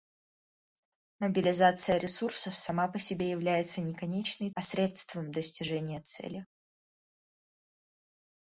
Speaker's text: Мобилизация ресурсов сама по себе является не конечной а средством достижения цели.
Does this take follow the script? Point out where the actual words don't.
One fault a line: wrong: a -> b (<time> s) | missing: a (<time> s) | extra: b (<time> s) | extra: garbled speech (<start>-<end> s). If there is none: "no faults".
no faults